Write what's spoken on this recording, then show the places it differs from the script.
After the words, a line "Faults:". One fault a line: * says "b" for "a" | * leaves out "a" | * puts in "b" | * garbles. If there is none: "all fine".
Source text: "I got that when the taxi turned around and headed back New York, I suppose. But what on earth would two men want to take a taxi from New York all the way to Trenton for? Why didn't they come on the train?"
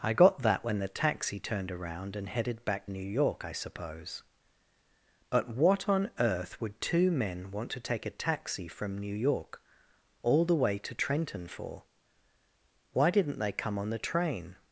"I got that when the taxi turned around and headed back New York, I suppose. But what on earth would two men want to take a taxi from New York all the way to Trenton for? Why didn't they come on the train?"
Faults:
all fine